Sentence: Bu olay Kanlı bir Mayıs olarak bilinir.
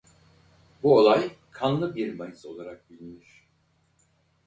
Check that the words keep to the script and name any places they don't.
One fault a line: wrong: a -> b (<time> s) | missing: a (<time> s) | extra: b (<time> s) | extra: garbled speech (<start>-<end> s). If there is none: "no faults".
no faults